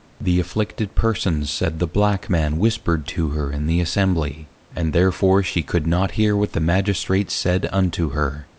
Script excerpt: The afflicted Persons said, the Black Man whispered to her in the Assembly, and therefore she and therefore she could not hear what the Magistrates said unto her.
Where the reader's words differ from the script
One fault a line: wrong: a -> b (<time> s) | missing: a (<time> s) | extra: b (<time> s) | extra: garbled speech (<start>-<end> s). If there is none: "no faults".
missing: and therefore she (5.6 s)